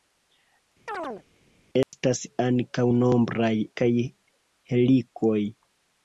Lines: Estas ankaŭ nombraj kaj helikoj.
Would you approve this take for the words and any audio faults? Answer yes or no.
no